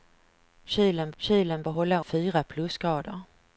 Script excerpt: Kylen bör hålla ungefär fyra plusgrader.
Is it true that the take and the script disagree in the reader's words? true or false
true